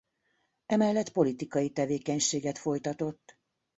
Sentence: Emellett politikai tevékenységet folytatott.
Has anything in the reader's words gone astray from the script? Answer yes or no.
no